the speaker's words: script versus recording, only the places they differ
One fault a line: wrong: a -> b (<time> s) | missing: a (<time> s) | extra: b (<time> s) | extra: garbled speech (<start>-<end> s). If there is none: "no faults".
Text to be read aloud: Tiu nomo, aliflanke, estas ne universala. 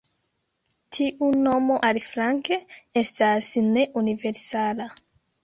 no faults